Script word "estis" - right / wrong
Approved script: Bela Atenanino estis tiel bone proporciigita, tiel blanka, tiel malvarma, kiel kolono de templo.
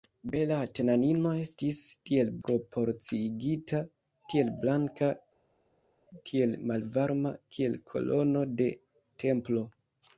right